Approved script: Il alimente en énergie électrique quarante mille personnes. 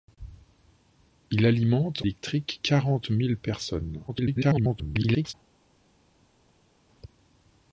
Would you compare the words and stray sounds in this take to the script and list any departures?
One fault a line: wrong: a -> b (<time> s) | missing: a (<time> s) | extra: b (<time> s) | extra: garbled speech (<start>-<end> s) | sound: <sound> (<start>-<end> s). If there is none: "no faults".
missing: en énergie (2.0 s)
extra: garbled speech (4.1-5.3 s)